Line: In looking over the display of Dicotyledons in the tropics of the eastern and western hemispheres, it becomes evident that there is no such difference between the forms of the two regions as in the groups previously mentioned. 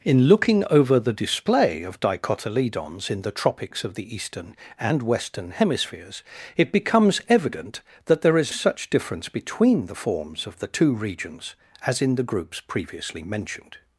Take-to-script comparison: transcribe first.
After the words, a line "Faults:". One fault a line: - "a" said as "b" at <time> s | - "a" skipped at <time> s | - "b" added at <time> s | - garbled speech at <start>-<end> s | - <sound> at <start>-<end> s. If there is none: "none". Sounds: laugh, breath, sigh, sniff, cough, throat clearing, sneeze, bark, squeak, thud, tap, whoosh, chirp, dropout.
In looking over the display of Dicotyledons in the tropics of the eastern and western hemispheres, it becomes evident that there is such difference between the forms of the two regions as in the groups previously mentioned.
Faults:
- "no" skipped at 8.5 s